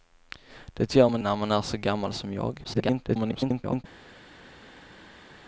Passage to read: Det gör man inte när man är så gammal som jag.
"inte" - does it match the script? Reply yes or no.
no